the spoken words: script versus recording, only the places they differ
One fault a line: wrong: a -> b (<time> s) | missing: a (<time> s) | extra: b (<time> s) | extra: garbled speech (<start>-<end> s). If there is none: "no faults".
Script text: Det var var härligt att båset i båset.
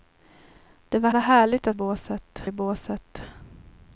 no faults